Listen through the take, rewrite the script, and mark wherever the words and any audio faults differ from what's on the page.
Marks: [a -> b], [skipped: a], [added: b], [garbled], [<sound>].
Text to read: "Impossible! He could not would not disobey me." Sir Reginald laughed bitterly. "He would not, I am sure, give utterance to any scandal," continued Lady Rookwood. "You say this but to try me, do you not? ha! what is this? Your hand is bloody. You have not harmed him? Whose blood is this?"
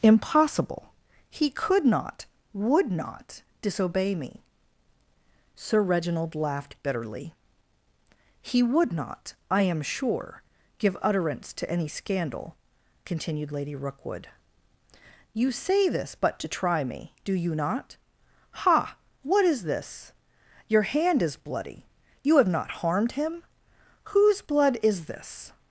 "Impossible! He could not would not disobey me." Sir Reginald laughed bitterly. "He would not, I am sure, give utterance to any scandal," continued Lady Rookwood. "You say this but to try me, do you not? ha! what is this? Your hand is bloody. You have not harmed him? Whose blood is this?"